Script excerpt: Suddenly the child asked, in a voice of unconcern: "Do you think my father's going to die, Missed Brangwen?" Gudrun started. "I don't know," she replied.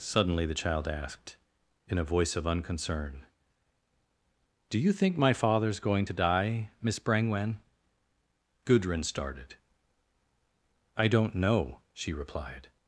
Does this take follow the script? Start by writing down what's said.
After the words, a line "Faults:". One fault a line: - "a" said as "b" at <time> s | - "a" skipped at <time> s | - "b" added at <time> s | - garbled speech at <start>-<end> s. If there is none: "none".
Suddenly the child asked, in a voice of unconcern: "Do you think my father's going to die, Miss Brangwen?" Gudrun started. "I don't know," she replied.
Faults:
- "Missed" said as "Miss" at 6.8 s